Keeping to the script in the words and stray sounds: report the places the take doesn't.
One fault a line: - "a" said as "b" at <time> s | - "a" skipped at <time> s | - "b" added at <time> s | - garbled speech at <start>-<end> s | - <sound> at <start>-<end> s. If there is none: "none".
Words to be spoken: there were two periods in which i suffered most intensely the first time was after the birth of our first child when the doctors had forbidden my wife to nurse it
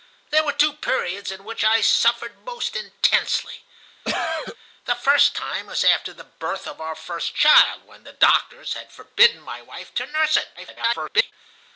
- cough at 4.0-4.6 s
- garbled speech at 10.6-11.3 s